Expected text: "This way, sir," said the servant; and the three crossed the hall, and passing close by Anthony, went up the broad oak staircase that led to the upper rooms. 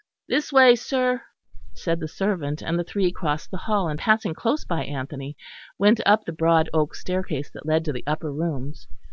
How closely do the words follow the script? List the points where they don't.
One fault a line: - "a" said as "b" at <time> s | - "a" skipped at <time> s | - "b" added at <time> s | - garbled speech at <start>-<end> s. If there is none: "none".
none